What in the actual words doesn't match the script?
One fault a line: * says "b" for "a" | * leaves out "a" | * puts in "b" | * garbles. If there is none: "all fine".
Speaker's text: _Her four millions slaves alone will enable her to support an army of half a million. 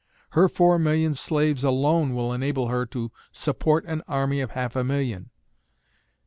all fine